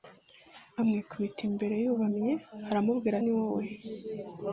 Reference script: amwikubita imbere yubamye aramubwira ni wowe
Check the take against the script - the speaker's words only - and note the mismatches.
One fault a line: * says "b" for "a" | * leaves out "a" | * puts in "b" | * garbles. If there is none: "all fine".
all fine